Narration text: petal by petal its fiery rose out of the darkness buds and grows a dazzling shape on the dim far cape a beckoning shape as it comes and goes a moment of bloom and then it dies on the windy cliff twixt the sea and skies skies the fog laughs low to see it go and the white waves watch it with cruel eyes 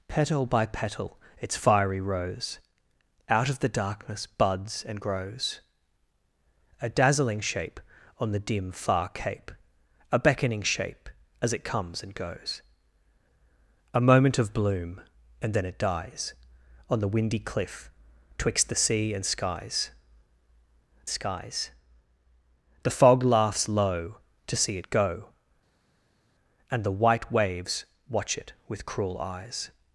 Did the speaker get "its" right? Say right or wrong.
right